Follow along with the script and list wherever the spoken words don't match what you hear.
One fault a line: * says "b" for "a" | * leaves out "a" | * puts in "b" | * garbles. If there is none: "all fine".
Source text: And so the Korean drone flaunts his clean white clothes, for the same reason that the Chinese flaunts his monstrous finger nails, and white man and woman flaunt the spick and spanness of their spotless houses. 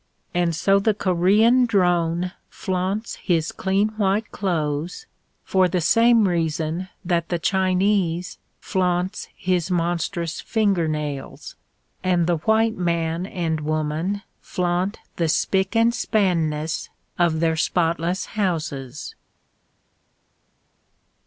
* puts in "the"